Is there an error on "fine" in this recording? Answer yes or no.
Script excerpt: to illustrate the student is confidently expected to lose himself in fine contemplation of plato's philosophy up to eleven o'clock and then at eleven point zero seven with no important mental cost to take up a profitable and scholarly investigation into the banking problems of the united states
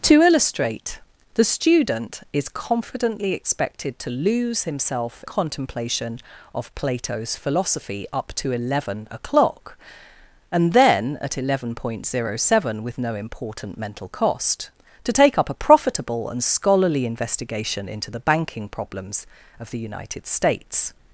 yes